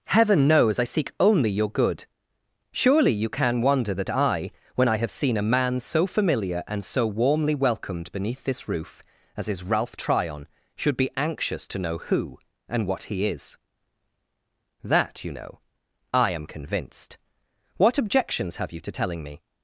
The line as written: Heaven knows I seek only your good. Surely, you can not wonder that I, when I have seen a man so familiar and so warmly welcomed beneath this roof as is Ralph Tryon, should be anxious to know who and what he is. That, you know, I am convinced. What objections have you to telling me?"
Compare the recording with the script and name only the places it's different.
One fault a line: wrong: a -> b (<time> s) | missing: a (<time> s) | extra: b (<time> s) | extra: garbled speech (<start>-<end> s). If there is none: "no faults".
missing: not (3.6 s)